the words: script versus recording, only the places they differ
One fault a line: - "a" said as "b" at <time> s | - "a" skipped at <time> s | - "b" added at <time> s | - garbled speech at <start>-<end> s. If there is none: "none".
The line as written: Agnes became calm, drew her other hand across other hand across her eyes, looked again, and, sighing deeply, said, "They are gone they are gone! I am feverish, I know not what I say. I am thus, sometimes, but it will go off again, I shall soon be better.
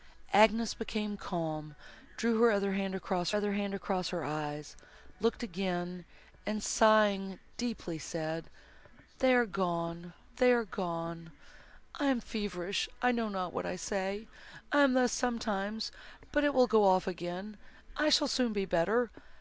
none